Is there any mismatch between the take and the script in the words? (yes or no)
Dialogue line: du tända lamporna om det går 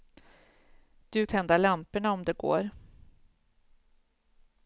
no